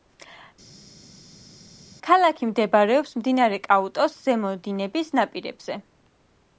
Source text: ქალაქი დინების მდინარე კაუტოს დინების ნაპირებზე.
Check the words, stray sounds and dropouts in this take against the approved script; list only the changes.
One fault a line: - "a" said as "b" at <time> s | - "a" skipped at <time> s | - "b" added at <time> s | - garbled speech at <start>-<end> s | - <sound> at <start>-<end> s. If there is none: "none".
- "დინების" said as "მდებარეობს" at 2.5 s
- "ზემო" added at 4.3 s